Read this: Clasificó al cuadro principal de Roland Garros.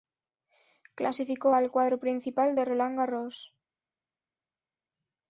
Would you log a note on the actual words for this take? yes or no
no